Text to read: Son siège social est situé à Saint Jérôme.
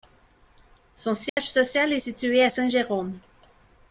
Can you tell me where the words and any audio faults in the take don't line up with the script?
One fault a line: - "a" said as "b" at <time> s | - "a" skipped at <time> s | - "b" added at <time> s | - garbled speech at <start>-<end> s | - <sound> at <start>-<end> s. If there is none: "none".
- dropout at 1.3-1.4 s